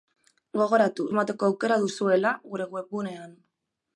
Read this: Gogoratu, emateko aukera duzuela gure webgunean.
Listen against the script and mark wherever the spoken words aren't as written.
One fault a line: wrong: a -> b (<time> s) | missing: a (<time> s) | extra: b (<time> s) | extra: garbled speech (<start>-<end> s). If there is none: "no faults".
no faults